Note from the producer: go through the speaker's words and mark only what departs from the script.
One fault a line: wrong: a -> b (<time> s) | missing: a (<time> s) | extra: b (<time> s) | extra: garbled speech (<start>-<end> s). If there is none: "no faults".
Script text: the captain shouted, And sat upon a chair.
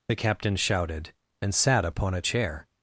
no faults